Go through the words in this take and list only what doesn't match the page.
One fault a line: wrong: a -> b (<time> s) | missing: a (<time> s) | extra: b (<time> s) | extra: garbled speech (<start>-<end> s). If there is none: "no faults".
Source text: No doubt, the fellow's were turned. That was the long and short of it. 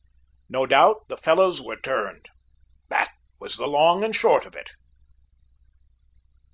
no faults